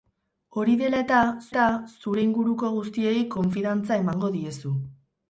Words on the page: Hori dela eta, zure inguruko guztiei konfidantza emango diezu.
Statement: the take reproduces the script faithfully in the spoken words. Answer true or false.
false